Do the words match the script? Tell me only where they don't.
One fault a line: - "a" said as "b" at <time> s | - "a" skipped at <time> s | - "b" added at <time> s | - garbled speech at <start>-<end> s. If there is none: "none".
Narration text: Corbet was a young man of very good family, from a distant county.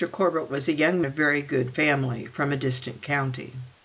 - "man" skipped at 1.0 s